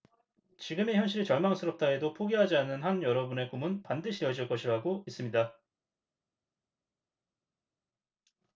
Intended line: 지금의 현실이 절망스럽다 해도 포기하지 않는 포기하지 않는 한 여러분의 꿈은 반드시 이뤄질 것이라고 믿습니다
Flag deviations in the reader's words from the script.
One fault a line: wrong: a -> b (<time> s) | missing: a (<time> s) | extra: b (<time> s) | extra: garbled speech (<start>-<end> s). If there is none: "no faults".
missing: 포기하지 않는 (2.8 s)